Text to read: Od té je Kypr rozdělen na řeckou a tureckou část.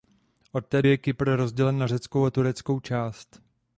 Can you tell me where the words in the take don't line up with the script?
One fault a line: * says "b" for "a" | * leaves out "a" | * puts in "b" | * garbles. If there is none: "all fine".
all fine